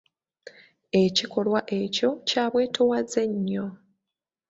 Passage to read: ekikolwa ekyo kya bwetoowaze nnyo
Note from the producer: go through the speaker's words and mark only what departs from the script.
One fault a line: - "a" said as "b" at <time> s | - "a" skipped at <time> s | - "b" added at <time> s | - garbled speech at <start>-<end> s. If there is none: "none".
none